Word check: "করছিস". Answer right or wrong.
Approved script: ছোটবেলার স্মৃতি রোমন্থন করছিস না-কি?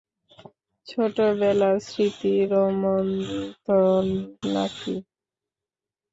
wrong